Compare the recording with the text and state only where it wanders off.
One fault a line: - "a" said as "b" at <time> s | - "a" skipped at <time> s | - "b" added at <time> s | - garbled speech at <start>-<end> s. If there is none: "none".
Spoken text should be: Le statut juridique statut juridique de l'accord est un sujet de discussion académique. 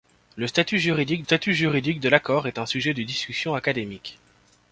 none